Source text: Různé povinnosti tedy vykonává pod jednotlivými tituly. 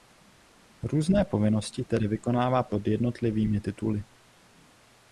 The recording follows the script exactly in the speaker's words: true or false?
true